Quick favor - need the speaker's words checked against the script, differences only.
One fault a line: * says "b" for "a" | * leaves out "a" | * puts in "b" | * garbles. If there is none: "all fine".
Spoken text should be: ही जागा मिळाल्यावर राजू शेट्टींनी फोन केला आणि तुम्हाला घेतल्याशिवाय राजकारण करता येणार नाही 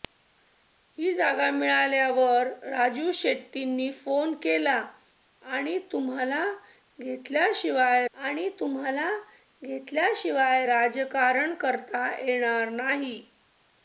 * puts in "आणि तुम्हाला घेतल्याशिवाय"